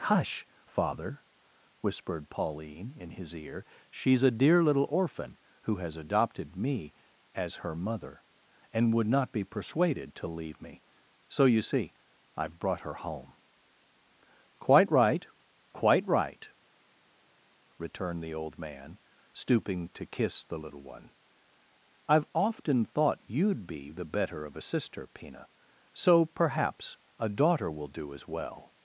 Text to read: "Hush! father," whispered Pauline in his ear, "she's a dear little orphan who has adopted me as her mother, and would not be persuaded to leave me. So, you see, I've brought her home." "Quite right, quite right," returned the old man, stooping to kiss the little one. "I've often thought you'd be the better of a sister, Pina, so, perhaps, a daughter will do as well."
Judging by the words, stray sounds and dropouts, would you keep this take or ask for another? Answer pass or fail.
pass